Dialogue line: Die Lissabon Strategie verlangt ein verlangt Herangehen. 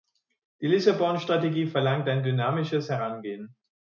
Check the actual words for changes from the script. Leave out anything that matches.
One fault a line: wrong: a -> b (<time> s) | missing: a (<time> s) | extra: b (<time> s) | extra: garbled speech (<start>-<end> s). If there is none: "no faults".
wrong: verlangt -> dynamisches (2.2 s)